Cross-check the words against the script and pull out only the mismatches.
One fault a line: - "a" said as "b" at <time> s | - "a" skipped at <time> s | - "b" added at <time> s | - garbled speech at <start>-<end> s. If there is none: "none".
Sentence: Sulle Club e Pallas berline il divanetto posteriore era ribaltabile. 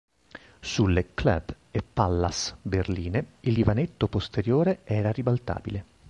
none